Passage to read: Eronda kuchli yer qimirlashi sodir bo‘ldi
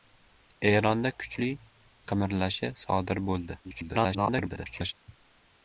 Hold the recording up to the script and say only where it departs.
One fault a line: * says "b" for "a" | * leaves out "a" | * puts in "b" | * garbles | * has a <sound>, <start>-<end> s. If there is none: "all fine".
* leaves out "yer"
* garbles